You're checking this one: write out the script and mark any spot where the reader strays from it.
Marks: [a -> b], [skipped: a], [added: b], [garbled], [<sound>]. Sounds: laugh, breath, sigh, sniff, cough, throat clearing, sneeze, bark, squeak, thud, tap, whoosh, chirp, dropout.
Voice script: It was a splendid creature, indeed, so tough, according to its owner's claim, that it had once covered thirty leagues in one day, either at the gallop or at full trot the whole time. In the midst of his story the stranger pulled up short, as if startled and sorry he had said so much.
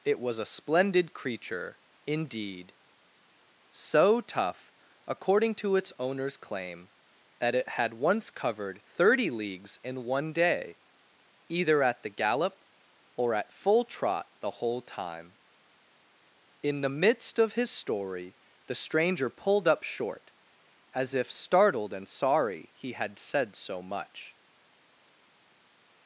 It was a splendid creature, indeed, so tough, according to its owner's claim, that it had once covered thirty leagues in one day, either at the gallop or at full trot the whole time. In the midst of his story the stranger pulled up short, as if startled and sorry he had said so much.